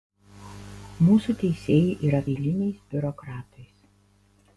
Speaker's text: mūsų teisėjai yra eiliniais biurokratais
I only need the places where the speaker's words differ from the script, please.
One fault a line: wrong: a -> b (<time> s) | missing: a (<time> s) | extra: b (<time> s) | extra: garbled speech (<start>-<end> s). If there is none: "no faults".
no faults